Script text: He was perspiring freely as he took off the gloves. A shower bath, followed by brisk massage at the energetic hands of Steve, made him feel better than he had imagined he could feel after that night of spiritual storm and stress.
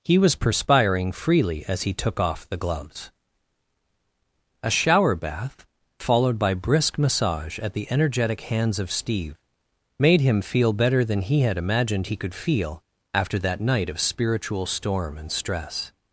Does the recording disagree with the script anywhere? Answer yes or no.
no